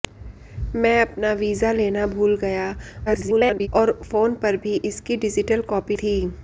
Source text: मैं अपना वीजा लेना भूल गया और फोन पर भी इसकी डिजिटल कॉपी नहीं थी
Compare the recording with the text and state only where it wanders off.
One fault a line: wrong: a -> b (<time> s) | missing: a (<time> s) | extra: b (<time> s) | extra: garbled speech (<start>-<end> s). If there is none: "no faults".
extra: garbled speech (3.1-3.7 s)
missing: नहीं (6.0 s)